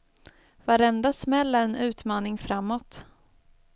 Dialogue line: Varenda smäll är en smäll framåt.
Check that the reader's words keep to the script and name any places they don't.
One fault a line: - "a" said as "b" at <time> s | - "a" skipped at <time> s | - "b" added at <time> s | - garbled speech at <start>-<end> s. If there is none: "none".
- "smäll" said as "utmaning" at 1.8 s